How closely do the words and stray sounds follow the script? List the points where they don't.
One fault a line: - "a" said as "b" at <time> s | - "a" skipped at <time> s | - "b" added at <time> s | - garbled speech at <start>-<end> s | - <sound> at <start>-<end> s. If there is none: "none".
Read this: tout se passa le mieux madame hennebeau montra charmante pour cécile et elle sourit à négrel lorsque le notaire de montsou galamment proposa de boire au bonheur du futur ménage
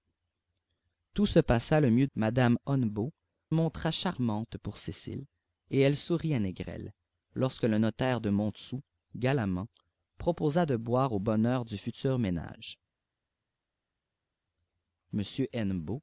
none